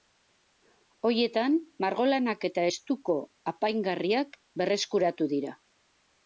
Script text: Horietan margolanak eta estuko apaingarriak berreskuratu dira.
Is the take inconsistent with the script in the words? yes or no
no